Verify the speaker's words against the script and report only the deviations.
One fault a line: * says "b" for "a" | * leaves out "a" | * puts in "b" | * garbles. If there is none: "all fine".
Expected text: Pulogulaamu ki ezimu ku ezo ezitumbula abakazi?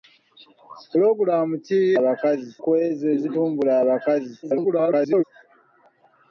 * says "abakazi" for "ezimu"
* garbles